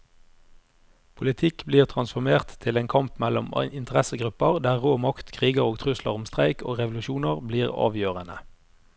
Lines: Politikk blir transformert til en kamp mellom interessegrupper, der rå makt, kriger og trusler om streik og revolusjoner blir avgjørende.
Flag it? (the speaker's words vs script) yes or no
no